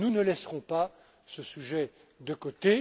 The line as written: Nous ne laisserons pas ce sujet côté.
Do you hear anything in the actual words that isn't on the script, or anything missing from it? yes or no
yes